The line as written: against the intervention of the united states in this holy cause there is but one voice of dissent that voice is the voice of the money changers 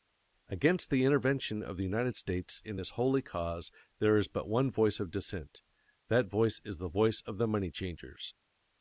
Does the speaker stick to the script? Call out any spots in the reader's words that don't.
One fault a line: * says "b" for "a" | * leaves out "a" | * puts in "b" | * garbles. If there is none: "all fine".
all fine